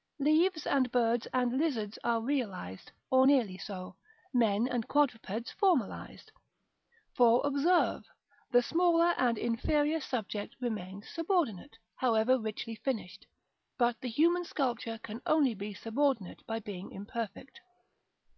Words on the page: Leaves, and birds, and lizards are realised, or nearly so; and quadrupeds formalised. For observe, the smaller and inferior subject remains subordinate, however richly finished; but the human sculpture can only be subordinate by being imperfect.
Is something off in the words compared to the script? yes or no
yes